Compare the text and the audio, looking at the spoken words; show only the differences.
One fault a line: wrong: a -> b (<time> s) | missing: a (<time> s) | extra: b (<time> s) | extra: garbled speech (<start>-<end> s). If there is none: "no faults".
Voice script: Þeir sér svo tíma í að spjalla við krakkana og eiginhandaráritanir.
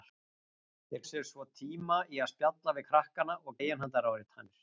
no faults